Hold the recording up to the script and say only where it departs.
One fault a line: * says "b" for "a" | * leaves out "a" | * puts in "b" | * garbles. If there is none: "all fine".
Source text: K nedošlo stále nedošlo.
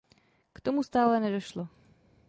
* says "tomu" for "nedošlo"